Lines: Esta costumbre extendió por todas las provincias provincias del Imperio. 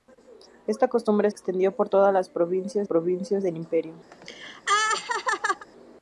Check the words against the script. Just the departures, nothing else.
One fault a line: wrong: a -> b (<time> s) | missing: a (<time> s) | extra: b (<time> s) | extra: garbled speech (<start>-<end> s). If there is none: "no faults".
no faults